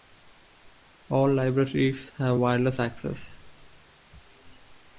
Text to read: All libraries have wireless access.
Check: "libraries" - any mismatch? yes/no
no